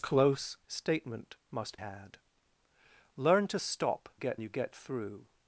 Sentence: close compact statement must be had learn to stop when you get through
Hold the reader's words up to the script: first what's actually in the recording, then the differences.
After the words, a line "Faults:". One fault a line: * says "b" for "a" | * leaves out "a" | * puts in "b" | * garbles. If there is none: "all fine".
close statement must had learn to stop get you get through
Faults:
* leaves out "compact"
* leaves out "be"
* says "get" for "when"